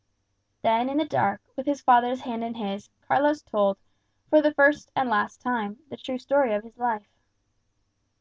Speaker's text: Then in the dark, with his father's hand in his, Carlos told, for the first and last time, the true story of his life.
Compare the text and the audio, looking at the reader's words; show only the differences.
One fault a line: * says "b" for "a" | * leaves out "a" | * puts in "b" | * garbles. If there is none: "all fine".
all fine